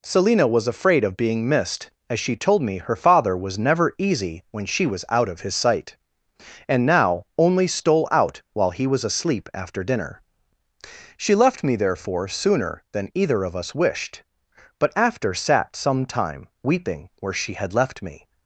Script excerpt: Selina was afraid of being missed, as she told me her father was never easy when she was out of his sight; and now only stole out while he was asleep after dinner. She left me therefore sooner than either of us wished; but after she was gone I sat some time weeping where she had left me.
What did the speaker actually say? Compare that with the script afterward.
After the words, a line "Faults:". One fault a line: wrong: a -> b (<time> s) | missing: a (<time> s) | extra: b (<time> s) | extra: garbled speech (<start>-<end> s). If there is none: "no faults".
Selina was afraid of being missed, as she told me her father was never easy when she was out of his sight; and now only stole out while he was asleep after dinner. She left me therefore sooner than either of us wished; but after sat some time weeping where she had left me.
Faults:
missing: she was gone I (15.3 s)